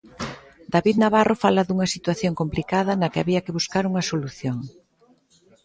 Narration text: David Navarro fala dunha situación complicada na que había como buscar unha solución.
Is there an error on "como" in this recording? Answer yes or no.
yes